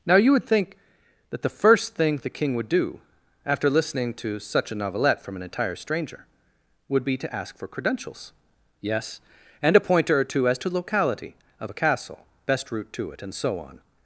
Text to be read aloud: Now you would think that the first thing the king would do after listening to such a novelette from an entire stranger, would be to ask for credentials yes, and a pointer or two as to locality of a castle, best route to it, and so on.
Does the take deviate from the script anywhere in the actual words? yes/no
no